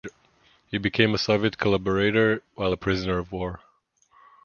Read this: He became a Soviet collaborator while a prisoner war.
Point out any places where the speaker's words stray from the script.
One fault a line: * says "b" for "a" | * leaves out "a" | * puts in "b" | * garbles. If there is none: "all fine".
* puts in "of"